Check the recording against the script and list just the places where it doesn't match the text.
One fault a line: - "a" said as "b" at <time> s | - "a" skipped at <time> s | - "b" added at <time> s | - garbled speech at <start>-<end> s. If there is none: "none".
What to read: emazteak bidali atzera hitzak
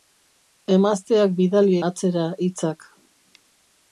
none